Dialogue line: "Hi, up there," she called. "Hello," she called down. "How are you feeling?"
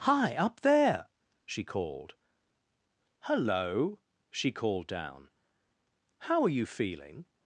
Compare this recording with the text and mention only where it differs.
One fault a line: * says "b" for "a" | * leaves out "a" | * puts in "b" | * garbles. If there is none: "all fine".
all fine